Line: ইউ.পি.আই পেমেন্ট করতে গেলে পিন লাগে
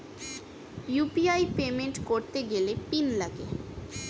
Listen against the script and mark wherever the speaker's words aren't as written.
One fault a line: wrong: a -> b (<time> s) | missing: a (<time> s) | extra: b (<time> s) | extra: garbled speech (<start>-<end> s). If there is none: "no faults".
no faults